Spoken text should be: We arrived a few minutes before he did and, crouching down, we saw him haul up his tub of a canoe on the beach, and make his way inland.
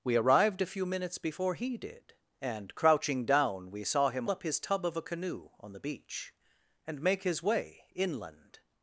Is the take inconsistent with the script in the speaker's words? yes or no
yes